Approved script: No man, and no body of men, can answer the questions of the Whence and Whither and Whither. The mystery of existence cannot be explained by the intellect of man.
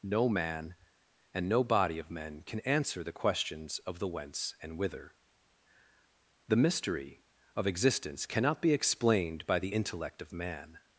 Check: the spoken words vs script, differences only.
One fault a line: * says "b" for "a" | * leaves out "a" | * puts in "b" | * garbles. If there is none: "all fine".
* leaves out "and Whither"